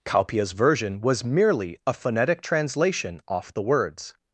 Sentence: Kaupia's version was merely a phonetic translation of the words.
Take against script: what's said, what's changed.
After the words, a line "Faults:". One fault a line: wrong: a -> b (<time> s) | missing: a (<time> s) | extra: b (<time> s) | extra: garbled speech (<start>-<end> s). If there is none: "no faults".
Kaupia's version was merely a phonetic translation off the words.
Faults:
wrong: of -> off (3.3 s)